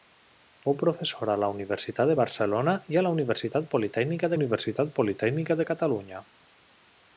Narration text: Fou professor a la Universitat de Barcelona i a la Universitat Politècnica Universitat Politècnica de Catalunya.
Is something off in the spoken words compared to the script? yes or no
no